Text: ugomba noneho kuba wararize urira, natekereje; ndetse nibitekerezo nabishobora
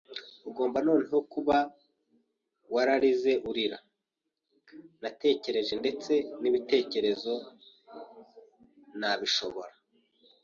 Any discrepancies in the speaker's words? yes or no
no